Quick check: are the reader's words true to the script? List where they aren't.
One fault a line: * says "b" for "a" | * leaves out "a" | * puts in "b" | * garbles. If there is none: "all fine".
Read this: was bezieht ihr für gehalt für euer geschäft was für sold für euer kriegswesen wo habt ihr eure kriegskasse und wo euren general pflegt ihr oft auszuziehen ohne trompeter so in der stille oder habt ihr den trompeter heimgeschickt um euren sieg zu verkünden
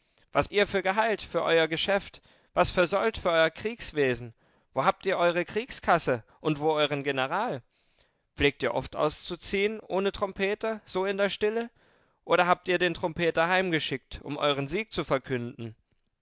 * leaves out "bezieht"